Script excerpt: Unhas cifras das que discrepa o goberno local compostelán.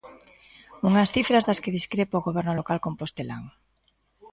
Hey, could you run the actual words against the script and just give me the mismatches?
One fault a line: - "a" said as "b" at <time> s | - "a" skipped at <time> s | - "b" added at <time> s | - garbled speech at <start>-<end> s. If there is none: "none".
none